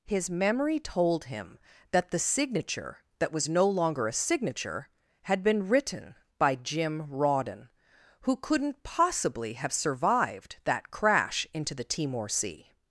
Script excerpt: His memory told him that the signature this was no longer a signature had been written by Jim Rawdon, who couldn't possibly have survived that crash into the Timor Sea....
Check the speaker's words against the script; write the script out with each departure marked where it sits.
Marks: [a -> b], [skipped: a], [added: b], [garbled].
His memory told him that the signature [this -> that] was no longer a signature had been written by Jim Rawdon, who couldn't possibly have survived that crash into the Timor Sea....